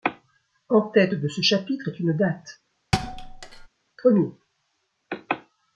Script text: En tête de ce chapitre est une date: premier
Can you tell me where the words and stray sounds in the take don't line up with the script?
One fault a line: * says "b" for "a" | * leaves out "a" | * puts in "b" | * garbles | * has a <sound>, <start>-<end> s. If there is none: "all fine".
* has a thud, 2.9-3.7 s